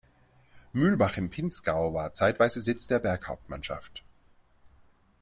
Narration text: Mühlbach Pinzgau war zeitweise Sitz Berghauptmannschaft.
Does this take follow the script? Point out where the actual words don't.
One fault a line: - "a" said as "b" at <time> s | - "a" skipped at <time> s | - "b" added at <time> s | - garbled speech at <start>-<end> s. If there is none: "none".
- "im" added at 1.2 s
- "der" added at 2.9 s